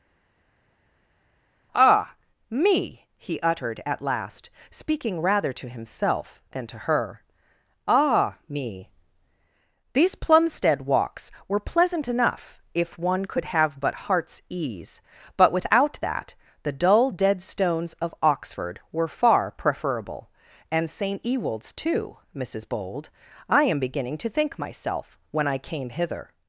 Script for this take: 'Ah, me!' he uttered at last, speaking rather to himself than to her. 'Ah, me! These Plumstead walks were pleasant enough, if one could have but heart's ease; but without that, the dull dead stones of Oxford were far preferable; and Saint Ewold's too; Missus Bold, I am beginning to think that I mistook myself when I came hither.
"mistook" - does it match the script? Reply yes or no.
no